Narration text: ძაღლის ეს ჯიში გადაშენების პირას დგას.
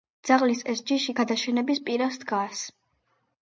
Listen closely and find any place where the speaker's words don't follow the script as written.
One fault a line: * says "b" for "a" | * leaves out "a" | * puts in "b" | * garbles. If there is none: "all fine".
all fine